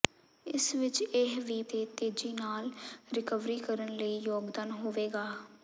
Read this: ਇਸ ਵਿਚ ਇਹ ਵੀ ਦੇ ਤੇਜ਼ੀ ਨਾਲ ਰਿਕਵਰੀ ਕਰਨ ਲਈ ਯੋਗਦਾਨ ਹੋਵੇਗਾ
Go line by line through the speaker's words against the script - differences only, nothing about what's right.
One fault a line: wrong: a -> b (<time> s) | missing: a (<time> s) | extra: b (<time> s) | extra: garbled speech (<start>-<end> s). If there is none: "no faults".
no faults